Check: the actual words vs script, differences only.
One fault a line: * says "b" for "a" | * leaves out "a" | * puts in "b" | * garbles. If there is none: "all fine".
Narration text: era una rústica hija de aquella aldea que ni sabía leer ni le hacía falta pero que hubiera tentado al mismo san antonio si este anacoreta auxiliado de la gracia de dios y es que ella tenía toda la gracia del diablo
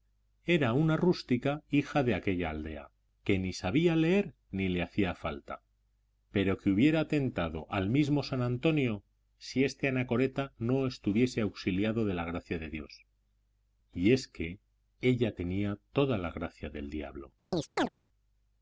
* puts in "no estuviese"